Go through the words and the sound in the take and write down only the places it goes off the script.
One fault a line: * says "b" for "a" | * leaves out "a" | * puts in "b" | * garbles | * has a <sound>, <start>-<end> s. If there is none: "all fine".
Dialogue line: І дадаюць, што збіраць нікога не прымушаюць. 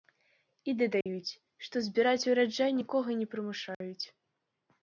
* has a dropout, 1.0-1.1 s
* puts in "ураджай"
* has a dropout, 3.7-3.8 s